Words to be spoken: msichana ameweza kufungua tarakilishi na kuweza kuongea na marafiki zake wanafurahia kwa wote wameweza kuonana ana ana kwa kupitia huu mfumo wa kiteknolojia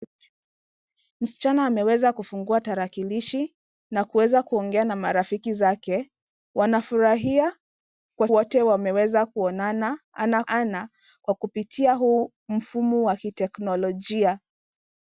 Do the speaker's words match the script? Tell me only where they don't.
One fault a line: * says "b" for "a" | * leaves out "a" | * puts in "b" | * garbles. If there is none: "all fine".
all fine